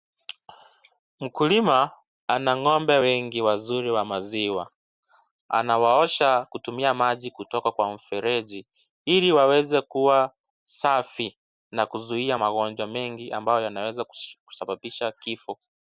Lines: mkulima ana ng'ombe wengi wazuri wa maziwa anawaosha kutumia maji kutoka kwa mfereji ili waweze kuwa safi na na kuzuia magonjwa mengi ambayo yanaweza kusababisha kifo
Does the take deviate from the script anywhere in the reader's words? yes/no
yes